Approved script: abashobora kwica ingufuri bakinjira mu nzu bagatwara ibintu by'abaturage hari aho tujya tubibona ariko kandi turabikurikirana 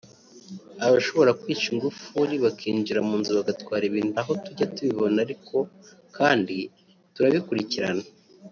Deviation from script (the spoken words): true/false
true